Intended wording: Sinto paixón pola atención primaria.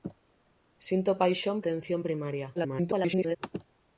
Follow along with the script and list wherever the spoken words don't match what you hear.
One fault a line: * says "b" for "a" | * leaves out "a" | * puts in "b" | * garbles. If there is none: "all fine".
* leaves out "pola"
* garbles